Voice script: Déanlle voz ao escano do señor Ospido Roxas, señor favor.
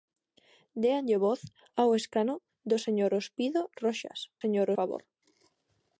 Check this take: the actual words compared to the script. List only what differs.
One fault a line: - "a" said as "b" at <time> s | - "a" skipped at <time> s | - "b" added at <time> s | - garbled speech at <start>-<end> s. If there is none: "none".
none